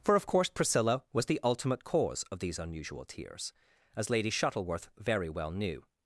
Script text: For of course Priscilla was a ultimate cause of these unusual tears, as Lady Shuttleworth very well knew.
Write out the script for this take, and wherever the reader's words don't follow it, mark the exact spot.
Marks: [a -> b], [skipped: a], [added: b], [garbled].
For of course Priscilla was [a -> the] ultimate cause of these unusual tears, as Lady Shuttleworth very well knew.